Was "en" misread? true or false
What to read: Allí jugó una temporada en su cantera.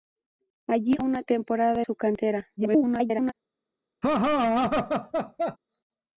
true